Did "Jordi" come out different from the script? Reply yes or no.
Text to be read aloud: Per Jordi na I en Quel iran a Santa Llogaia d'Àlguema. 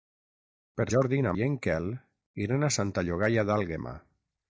no